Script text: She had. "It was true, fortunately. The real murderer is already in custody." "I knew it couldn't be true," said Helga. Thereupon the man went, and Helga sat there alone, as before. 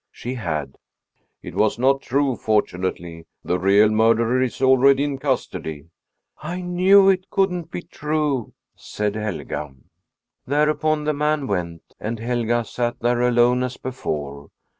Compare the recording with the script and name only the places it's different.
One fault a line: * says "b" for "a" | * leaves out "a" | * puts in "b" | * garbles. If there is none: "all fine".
* puts in "not"